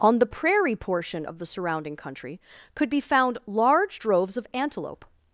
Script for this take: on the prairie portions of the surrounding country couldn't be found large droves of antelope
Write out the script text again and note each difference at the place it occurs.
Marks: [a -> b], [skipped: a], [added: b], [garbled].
on the prairie [portions -> portion] of the surrounding country [couldn't -> could] be found large droves of antelope